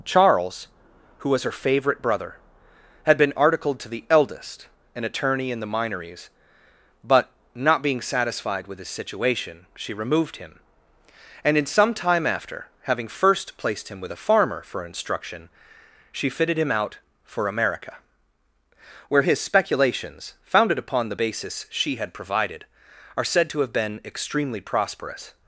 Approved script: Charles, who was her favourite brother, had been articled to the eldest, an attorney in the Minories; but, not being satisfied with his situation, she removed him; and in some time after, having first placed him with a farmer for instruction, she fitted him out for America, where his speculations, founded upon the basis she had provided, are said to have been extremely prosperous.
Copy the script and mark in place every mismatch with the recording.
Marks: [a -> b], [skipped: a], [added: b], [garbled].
Charles, who was her favourite brother, had been articled to the eldest, an attorney in the Minories; but, not being satisfied with his situation, she removed him; and in some time after, having first placed him with a farmer for instruction, she fitted him out for America, where his speculations, founded upon the basis she had provided, are said to have been extremely prosperous.